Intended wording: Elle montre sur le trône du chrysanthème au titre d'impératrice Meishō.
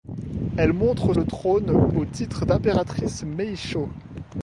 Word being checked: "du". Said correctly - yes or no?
no